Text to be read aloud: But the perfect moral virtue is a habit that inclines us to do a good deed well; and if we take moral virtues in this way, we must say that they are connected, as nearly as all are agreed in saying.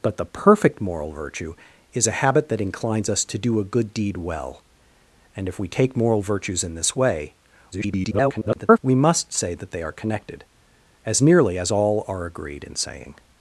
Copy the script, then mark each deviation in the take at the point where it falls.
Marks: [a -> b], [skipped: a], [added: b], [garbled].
But the perfect moral virtue is a habit that inclines us to do a good deed well; and if we take moral virtues in this way, [garbled] we must say that they are connected, as nearly as all are agreed in saying.